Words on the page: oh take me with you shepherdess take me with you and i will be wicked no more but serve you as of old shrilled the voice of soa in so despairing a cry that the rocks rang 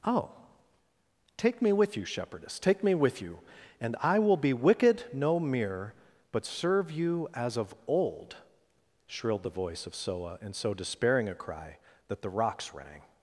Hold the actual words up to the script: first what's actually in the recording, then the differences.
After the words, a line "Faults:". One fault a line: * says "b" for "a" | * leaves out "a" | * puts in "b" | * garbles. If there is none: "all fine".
oh take me with you shepherdess take me with you and i will be wicked no mere but serve you as of old shrilled the voice of soa in so despairing a cry that the rocks rang
Faults:
* says "mere" for "more"